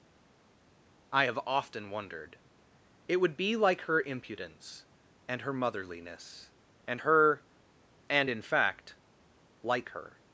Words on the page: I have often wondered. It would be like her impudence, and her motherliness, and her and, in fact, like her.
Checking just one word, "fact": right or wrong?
right